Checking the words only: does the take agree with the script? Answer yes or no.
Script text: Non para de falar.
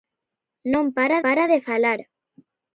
no